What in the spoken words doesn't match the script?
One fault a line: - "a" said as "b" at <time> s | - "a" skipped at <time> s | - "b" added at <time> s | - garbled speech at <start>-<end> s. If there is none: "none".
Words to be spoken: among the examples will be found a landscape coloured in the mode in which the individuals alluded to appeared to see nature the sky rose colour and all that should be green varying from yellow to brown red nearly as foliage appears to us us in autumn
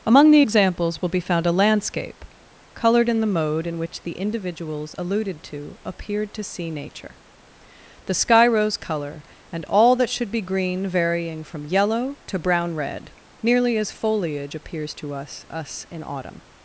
none